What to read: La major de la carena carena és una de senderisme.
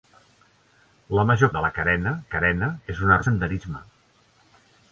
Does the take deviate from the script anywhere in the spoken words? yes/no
no